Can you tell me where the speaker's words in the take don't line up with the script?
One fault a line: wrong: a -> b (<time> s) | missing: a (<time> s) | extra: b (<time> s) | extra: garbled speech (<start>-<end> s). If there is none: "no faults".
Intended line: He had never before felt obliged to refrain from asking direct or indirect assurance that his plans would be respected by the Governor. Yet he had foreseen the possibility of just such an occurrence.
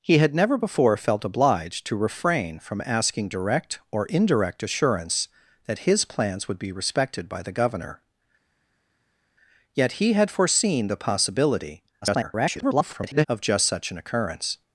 extra: garbled speech (12.0-13.3 s)